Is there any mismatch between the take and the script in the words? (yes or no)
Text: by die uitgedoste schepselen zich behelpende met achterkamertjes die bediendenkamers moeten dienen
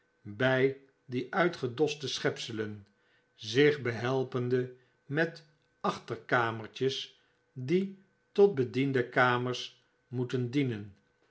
yes